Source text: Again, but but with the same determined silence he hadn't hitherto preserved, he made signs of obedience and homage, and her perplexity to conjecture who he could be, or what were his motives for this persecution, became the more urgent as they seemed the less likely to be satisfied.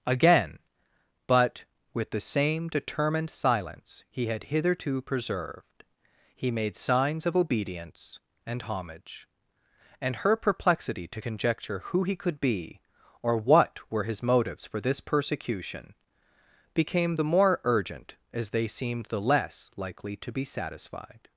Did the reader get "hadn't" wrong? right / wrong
wrong